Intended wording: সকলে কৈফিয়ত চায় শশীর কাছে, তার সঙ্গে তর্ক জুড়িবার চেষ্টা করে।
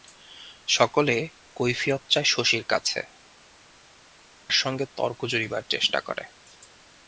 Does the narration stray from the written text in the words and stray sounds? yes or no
yes